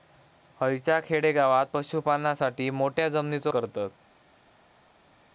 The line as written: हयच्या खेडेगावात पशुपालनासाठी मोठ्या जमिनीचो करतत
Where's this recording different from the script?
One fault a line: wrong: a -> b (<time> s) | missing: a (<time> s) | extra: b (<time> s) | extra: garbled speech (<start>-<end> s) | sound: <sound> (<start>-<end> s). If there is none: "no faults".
no faults